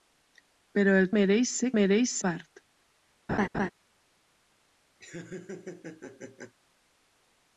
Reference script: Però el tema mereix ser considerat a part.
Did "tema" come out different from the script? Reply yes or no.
yes